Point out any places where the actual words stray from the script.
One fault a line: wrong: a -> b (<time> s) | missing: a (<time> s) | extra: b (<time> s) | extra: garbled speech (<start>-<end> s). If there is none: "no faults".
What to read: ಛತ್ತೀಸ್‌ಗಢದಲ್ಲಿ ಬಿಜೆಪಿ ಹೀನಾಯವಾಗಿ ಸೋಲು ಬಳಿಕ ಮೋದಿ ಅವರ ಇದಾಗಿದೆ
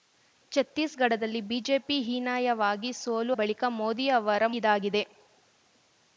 no faults